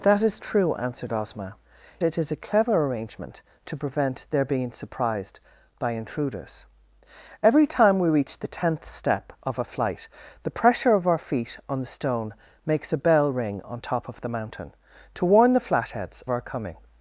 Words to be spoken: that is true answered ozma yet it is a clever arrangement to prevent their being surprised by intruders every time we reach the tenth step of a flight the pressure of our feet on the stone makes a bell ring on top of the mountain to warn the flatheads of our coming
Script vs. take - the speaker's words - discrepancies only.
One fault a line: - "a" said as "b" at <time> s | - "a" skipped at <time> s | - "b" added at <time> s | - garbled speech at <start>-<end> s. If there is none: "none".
- "yet" skipped at 1.6 s
- "of" skipped at 16.2 s